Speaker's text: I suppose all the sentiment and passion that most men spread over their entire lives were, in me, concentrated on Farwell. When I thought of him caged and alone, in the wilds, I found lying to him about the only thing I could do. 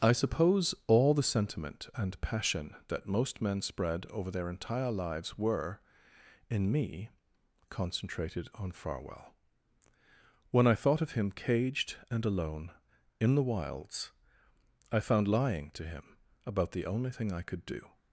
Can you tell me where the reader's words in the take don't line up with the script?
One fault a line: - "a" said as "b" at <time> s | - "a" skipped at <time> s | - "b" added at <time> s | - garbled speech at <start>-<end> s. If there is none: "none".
none